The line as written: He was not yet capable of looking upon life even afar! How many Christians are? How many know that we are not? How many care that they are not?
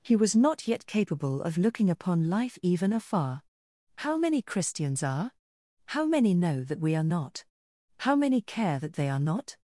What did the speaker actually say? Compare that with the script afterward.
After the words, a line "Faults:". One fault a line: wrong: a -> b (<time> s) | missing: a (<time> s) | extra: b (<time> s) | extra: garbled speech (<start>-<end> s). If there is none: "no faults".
He was not yet capable of looking upon life even afar! How many Christians are? How many know that we are not? How many care that they are not?
Faults:
no faults